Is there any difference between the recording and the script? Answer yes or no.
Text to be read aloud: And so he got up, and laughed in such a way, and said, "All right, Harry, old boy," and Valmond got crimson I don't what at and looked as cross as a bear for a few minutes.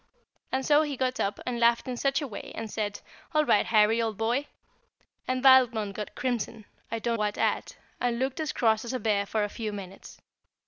no